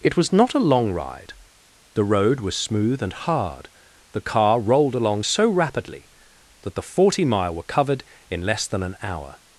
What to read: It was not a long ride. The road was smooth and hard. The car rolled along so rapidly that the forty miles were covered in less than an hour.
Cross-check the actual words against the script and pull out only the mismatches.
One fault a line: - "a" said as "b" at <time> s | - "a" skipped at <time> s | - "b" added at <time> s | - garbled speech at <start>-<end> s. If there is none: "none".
- "miles" said as "mile" at 7.3 s